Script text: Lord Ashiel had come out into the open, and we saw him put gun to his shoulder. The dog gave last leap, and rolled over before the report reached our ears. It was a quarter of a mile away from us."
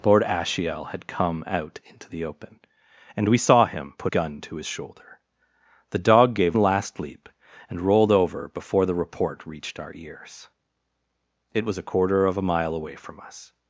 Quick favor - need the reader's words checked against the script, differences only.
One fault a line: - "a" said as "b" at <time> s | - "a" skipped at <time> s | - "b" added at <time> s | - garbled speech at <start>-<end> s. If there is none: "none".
none